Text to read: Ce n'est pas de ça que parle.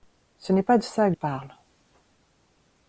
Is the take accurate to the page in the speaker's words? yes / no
yes